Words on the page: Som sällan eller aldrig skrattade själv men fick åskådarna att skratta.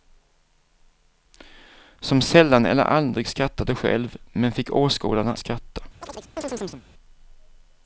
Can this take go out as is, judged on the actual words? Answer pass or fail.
fail